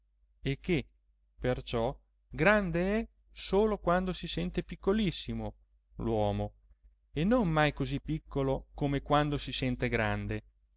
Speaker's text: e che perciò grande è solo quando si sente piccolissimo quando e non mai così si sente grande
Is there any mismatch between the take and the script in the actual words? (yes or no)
yes